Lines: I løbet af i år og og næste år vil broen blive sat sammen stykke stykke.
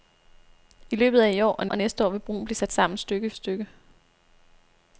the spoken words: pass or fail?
pass